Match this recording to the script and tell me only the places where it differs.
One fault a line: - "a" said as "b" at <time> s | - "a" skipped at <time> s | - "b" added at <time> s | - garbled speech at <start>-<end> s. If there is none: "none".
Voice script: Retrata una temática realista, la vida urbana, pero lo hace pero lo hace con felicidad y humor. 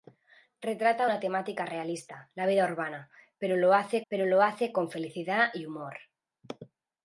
none